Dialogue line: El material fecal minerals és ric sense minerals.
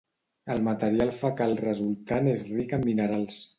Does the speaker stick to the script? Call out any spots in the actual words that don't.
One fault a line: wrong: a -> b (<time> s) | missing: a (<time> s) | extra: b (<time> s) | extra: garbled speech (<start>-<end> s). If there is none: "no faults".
wrong: minerals -> resultant (1.6 s)
wrong: sense -> en (2.8 s)